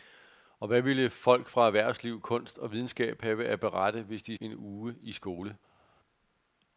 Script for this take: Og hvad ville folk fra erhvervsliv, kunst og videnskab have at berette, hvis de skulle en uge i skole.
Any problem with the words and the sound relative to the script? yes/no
yes